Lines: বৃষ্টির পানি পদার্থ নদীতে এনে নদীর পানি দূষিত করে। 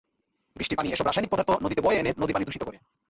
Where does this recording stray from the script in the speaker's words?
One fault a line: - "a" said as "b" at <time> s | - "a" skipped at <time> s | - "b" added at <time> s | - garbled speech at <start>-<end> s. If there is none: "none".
- "এসব রাসায়নিক" added at 0.9 s
- "বয়ে" added at 1.8 s